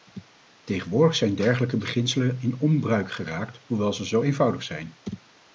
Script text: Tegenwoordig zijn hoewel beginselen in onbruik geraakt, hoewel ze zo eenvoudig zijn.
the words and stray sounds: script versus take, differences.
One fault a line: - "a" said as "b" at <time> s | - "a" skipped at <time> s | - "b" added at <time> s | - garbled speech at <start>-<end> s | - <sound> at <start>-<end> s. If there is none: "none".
- "hoewel" said as "dergelijke" at 1.4 s